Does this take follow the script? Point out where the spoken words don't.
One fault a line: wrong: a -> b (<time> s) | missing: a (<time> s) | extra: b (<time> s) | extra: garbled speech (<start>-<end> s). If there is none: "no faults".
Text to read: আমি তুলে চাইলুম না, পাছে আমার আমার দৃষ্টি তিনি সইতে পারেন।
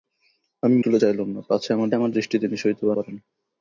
no faults